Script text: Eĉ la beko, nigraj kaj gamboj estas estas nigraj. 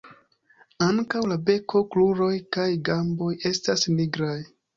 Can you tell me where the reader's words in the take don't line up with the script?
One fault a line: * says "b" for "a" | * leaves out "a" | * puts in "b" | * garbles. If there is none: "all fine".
* says "Ankaŭ" for "Eĉ"
* says "kruroj" for "nigraj"
* leaves out "estas"